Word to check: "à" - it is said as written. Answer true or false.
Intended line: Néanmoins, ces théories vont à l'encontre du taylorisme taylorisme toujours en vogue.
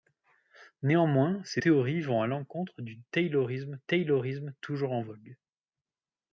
true